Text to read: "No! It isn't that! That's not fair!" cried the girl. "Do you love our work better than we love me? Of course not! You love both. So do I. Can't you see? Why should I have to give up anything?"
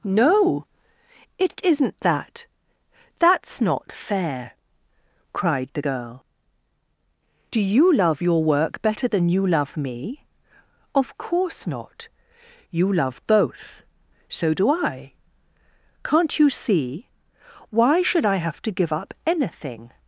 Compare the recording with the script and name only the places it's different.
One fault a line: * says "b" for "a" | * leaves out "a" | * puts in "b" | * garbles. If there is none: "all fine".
* says "your" for "our"
* says "you" for "we"